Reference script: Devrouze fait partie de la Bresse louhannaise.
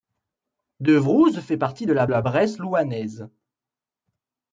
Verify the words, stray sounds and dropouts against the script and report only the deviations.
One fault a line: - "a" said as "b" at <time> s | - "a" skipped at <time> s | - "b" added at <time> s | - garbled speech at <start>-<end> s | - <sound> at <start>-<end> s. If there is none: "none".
- "la" added at 2.1 s